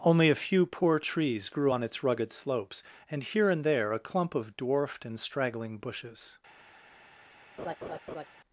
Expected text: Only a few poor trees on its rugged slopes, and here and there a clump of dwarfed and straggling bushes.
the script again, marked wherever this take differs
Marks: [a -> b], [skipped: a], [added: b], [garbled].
Only a few poor trees [added: grew] on its rugged slopes, and here and there a clump of dwarfed and straggling bushes.